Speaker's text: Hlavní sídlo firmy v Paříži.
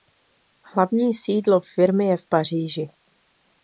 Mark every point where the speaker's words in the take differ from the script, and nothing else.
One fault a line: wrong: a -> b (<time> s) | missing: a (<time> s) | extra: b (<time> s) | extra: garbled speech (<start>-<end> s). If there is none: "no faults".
extra: je (2.0 s)